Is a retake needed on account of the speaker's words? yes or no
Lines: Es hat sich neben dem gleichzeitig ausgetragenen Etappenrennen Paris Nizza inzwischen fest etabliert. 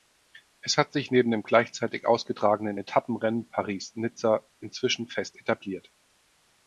no